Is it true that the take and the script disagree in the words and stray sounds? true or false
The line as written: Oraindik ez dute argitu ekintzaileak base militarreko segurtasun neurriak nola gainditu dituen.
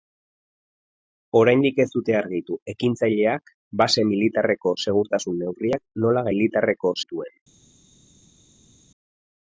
true